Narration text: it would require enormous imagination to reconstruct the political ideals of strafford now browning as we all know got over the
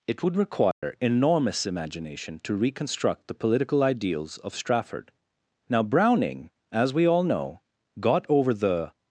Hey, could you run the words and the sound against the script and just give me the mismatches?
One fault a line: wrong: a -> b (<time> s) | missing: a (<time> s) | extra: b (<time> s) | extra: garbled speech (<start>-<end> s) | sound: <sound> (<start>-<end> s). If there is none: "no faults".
sound: dropout (0.7-0.8 s)